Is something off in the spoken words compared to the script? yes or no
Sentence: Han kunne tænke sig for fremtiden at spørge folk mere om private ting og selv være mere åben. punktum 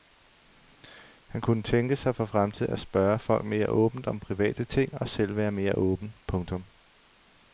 yes